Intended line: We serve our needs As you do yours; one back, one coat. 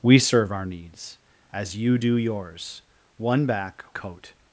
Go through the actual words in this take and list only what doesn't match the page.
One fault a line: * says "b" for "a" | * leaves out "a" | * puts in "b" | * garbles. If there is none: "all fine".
* leaves out "one"